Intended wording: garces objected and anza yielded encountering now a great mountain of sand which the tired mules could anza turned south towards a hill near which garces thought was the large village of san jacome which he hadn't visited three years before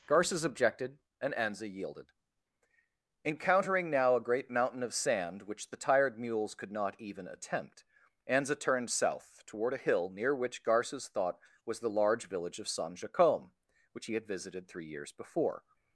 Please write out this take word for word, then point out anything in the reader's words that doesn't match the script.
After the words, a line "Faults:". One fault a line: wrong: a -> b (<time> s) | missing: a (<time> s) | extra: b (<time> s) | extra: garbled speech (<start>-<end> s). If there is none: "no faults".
garces objected and anza yielded encountering now a great mountain of sand which the tired mules could not even attempt anza turned south toward a hill near which garces thought was the large village of san jacome which he had visited three years before
Faults:
extra: not even attempt (6.7 s)
wrong: towards -> toward (9.4 s)
wrong: hadn't -> had (14.1 s)